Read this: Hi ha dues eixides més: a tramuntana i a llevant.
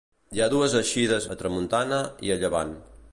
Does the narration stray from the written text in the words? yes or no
yes